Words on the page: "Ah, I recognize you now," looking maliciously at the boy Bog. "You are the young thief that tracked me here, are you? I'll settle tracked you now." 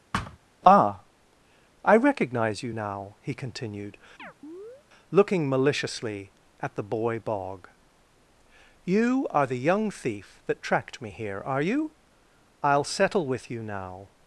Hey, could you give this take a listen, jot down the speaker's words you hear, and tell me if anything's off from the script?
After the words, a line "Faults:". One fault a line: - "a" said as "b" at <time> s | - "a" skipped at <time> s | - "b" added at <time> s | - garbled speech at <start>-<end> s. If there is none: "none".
"Ah, I recognize you now," he continued, looking maliciously at the boy Bog. "You are the young thief that tracked me here, are you? I'll settle with you now."
Faults:
- "he continued" added at 3.2 s
- "tracked" said as "with" at 13.3 s